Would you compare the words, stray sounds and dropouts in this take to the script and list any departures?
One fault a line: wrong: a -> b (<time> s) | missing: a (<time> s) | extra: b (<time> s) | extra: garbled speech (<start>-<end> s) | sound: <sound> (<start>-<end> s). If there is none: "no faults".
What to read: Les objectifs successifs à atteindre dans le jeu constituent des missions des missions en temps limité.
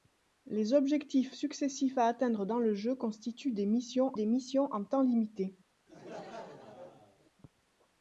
sound: laugh (5.9-7.3 s)